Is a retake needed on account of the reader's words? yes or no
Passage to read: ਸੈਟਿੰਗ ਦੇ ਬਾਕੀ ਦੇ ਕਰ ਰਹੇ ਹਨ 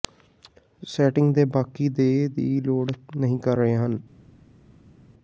yes